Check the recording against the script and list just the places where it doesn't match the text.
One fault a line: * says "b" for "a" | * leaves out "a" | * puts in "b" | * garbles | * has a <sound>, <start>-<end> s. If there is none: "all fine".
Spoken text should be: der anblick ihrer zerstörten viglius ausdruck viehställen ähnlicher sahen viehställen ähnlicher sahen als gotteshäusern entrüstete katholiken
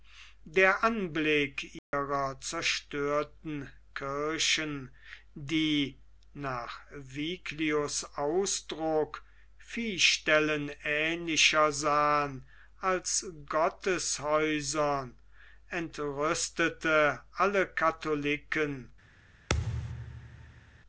* has a dropout, 1.8-1.9 s
* says "kirchen die nach viglius ausdruck" for "viglius ausdruck viehställen ähnlicher sahen"
* puts in "alle"
* has a thud, 19.5-20.8 s